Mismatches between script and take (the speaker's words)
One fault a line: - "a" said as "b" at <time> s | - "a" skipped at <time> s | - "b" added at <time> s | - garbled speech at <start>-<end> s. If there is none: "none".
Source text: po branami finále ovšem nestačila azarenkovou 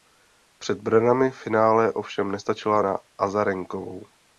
- "po" said as "před" at 0.6 s
- "na" added at 2.8 s